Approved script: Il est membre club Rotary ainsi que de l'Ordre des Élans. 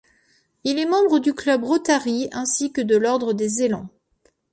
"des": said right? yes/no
yes